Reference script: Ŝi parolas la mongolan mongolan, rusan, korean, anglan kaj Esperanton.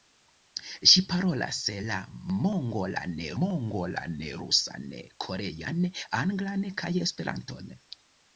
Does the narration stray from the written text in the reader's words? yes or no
no